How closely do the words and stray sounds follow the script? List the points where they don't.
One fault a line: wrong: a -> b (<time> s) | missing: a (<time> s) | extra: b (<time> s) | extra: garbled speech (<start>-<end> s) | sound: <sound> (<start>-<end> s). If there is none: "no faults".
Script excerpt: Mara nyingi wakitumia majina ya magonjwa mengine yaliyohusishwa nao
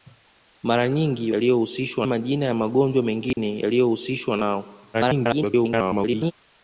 wrong: wakitumia -> yaliyohusishwa (1.3 s)
sound: dropout (3.3-3.4 s)
extra: garbled speech (4.9-6.3 s)